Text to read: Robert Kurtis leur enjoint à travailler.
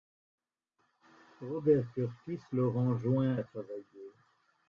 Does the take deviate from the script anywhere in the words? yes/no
no